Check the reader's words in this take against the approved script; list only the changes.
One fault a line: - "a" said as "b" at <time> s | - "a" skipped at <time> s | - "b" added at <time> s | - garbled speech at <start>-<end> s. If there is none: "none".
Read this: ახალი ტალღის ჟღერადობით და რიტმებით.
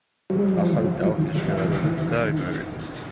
none